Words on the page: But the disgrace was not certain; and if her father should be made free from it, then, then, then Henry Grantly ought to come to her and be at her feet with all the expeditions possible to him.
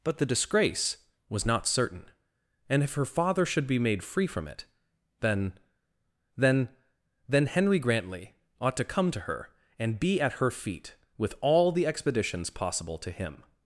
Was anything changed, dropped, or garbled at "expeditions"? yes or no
no